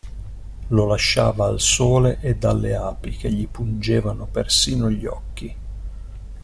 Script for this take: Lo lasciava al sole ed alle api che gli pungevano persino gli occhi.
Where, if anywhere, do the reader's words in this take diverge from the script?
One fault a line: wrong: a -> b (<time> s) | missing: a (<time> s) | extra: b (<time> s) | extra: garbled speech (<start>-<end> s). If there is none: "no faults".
no faults